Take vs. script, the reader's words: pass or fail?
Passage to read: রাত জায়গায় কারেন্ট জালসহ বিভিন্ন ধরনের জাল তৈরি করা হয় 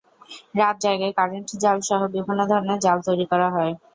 pass